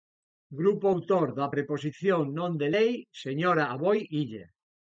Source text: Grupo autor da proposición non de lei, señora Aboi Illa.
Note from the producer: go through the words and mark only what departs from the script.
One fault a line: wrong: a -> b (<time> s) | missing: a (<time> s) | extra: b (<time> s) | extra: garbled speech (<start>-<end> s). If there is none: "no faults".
no faults